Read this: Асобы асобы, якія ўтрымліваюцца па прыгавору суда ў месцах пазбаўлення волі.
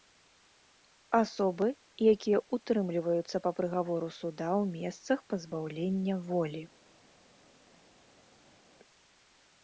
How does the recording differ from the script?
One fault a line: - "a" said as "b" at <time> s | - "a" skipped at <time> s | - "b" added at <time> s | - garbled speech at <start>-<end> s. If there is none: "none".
- "асобы" skipped at 1.7 s